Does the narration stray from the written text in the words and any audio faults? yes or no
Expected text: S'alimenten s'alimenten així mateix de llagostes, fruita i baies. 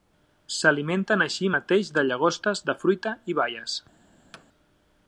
yes